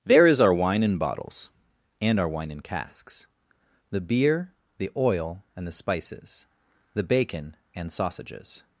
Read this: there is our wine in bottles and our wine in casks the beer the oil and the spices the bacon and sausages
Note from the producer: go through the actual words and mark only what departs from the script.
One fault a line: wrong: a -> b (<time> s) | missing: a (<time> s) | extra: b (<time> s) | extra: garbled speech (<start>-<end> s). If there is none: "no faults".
no faults